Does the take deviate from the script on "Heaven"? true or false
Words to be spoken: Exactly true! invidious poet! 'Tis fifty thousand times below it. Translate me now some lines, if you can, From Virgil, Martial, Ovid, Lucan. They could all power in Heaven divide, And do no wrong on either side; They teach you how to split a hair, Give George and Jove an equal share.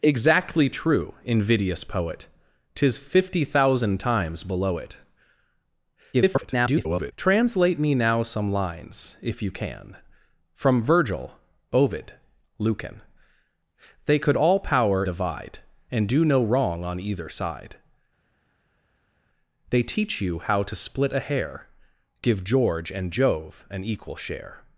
true